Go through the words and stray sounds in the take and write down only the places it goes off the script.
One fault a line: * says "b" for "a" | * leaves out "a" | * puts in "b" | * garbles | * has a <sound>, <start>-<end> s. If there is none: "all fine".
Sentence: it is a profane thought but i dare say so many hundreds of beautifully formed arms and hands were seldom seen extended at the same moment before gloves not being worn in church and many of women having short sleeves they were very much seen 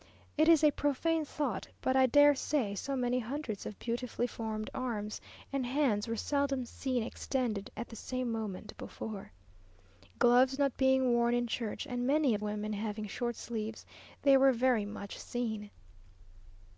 all fine